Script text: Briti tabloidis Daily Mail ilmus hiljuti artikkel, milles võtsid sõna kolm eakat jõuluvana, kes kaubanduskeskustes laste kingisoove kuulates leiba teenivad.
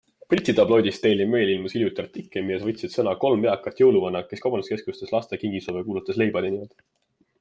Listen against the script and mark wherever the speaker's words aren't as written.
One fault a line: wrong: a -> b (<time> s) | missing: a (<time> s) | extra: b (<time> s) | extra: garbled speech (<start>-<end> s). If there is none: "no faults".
no faults